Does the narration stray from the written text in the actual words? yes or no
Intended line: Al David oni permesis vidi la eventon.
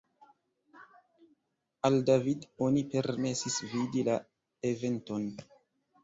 no